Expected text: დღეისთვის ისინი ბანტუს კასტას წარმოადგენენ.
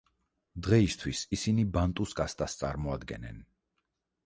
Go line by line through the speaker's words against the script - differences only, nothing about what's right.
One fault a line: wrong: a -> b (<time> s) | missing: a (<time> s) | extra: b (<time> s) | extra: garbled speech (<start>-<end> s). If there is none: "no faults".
no faults